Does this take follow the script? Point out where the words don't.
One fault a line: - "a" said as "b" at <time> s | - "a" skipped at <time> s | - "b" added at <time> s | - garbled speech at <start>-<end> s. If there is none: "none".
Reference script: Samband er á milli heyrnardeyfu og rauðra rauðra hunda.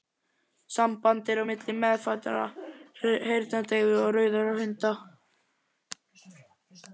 - "meðfæddrar" added at 1.8 s
- "rauðra" skipped at 4.5 s